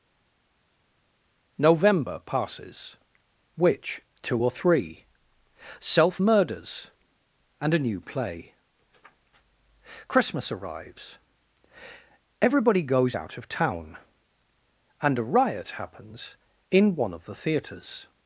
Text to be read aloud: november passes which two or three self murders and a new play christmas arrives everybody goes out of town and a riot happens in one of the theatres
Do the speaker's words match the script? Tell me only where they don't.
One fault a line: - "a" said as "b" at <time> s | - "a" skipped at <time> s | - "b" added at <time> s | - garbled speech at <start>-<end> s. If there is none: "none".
none